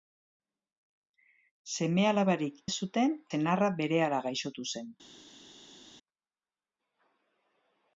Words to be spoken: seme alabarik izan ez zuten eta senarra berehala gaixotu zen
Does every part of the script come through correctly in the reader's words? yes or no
no